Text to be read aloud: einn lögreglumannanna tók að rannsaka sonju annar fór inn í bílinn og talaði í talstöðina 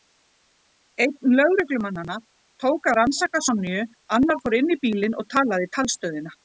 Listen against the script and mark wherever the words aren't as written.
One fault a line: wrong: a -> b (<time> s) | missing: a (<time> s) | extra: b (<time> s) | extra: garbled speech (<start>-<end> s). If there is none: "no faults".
no faults